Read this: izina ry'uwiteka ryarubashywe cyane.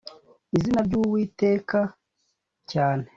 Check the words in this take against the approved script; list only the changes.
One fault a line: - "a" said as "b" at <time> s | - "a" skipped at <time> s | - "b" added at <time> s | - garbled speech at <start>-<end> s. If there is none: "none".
- "ryarubashywe" skipped at 1.8 s